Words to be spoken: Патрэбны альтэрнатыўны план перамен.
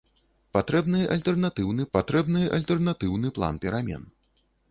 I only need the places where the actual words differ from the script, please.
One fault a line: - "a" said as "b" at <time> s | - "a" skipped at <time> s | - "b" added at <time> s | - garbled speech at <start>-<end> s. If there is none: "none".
- "патрэбны альтэрнатыўны" added at 1.9 s